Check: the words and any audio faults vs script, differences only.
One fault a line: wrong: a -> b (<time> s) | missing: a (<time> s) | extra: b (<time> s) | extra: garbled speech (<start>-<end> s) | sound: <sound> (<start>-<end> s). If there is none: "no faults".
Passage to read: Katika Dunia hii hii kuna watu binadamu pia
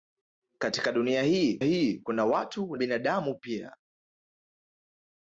no faults